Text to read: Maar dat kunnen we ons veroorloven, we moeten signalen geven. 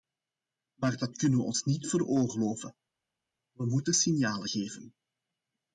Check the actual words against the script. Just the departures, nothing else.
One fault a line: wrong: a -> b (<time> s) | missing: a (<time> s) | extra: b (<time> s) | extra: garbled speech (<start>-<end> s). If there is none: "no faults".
extra: niet (1.6 s)